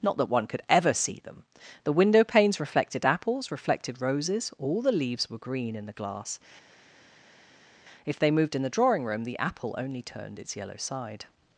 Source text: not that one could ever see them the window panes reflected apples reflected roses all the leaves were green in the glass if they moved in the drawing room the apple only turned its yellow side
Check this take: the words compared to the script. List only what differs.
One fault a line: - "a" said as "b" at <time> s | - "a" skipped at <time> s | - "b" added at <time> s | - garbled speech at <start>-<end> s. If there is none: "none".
none